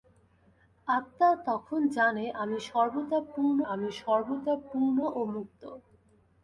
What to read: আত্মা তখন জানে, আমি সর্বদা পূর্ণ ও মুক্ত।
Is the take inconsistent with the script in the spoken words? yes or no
yes